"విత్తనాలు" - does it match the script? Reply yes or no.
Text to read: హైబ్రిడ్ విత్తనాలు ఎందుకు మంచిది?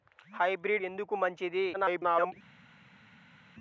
no